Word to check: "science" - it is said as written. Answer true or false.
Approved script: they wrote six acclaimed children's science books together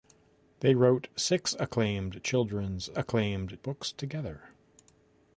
false